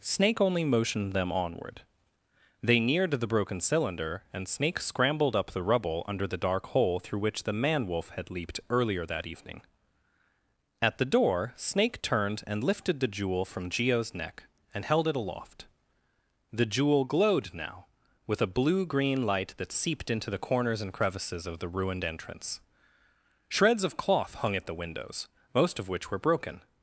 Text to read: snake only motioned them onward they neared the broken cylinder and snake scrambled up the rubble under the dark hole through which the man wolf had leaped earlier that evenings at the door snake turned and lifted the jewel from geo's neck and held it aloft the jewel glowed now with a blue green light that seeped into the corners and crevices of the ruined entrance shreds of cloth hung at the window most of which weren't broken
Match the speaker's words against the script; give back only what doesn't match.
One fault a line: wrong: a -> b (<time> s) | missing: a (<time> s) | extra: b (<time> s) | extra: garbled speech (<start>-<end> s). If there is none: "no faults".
wrong: evenings -> evening (9.3 s)
wrong: window -> windows (24.7 s)
wrong: weren't -> were (26.1 s)